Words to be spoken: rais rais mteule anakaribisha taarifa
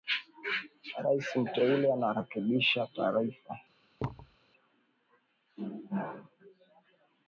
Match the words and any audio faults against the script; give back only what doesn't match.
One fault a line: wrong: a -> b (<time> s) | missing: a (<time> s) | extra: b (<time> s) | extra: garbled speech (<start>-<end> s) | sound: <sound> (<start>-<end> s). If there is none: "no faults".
missing: rais (1.4 s)
sound: thud (4.0-4.4 s)